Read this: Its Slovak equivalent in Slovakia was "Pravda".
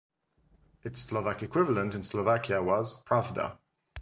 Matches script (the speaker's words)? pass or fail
pass